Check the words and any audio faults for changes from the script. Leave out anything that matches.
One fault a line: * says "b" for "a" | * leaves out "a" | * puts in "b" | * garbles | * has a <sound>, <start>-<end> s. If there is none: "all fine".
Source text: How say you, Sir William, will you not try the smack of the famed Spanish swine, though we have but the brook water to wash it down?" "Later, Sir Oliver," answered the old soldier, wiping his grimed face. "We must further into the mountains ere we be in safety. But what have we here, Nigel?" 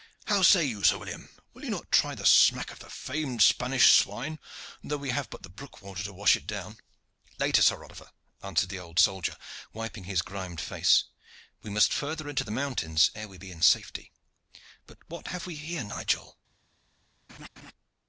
* has a laugh, 17.3-17.7 s